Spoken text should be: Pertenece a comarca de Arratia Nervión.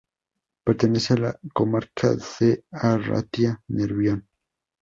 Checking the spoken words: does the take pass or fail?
fail